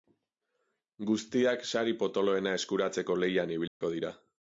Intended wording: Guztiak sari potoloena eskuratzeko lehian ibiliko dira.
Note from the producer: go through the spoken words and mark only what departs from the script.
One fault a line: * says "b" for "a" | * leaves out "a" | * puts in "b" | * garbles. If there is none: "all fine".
all fine